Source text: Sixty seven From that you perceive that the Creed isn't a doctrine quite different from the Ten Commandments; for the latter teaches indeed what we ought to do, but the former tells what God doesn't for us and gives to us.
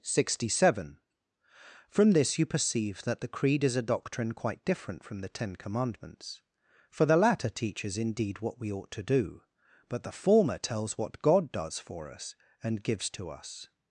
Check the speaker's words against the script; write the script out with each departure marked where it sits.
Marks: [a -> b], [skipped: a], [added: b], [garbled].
Sixty seven From [that -> this] you perceive that the Creed [isn't -> is] a doctrine quite different from the Ten Commandments; for the latter teaches indeed what we ought to do, but the former tells what God [doesn't -> does] for us and gives to us.